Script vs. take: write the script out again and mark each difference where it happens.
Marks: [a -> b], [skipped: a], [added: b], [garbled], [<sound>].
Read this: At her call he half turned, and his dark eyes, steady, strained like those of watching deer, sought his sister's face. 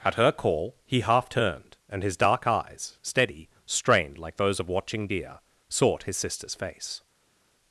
At her call he half turned, and his dark eyes, steady, strained like those of watching deer, sought his sister's face.